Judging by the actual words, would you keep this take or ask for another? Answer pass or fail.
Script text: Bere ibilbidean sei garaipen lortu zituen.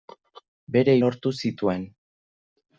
fail